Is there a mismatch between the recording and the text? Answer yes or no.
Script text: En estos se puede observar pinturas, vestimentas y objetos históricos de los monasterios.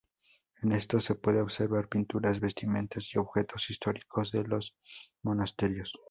no